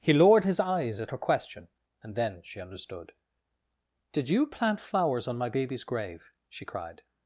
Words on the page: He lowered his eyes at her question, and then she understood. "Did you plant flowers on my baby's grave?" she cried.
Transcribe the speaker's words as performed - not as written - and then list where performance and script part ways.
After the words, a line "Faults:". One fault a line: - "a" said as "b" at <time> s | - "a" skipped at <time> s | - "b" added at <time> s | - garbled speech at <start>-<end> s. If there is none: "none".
He lowered his eyes at her question, and then she understood. "Did you plant flowers on my baby's grave?" she cried.
Faults:
none